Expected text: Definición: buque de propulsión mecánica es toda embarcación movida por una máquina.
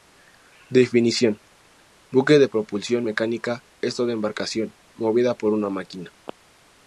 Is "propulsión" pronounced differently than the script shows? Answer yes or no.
no